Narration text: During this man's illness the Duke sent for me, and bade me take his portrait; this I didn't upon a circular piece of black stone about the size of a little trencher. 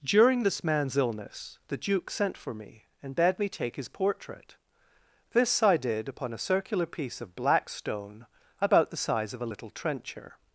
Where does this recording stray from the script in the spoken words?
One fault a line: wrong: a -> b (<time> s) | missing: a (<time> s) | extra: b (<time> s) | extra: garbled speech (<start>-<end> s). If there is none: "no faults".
wrong: didn't -> did (5.8 s)